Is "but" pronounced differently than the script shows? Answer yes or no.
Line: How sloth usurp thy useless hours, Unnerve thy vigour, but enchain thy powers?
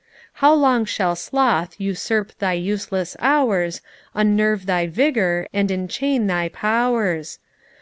yes